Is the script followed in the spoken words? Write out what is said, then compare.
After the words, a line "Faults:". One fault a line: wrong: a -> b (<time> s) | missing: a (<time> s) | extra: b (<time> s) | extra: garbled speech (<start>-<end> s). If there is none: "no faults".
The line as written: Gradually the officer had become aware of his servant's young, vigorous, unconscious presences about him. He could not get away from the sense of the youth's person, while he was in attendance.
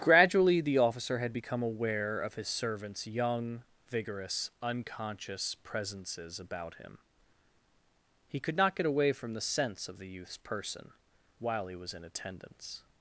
Gradually the officer had become aware of his servant's young, vigorous, unconscious presences about him. He could not get away from the sense of the youth's person, while he was in attendance.
Faults:
no faults